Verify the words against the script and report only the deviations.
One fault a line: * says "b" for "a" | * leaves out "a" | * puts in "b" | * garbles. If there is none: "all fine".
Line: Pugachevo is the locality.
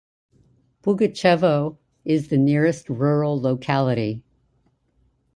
* puts in "nearest rural"